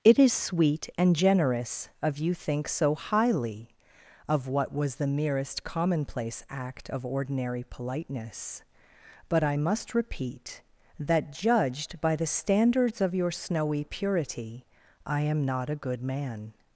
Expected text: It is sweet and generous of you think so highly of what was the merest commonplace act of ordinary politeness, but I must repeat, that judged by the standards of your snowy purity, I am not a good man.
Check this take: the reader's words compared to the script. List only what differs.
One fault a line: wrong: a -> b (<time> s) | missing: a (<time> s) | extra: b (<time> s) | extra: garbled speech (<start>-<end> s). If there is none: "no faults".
no faults